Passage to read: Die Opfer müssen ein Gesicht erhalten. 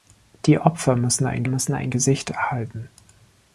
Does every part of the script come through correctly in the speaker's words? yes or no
no